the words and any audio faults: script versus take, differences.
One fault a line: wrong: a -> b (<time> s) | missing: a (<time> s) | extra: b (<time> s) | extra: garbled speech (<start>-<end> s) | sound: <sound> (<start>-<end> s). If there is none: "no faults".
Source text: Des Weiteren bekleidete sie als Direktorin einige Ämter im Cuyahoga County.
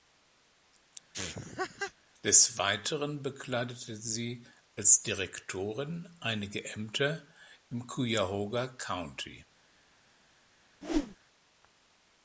sound: laugh (1.1-1.9 s)
sound: whoosh (10.8-11.2 s)